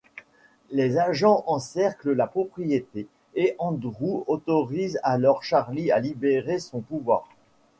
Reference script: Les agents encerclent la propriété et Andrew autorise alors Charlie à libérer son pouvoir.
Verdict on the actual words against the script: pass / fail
pass